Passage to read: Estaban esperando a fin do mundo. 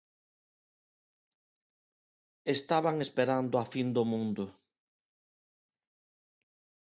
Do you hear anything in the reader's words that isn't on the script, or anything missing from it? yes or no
no